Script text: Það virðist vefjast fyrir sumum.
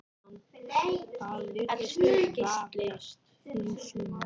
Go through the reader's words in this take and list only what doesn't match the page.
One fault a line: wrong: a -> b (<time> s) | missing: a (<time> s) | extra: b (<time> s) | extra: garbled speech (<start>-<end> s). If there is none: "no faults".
no faults